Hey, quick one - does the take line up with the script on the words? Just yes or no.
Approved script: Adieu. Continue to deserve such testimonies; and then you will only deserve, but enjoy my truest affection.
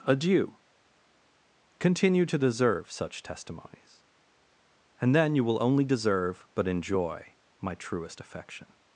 yes